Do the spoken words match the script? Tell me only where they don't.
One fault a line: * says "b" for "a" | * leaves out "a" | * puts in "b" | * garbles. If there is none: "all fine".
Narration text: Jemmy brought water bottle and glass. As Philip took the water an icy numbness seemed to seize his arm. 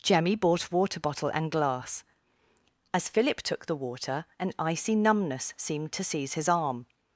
* says "bought" for "brought"